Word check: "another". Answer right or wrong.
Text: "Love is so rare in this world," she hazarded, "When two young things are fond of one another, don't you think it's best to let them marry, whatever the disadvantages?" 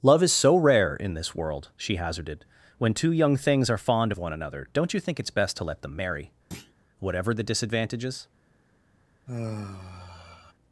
right